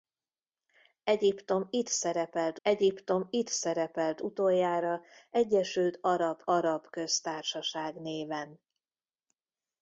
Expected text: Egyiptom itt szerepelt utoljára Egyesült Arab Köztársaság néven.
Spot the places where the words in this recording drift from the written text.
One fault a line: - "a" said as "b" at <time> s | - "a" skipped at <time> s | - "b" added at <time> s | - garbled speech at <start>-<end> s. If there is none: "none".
- "egyiptom itt szerepelt" added at 2.6 s
- "Arab" added at 6.4 s